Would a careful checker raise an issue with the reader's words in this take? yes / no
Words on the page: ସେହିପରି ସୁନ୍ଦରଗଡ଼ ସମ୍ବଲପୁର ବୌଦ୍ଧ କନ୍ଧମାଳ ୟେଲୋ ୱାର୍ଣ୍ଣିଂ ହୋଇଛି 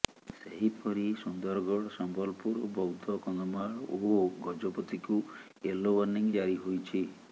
yes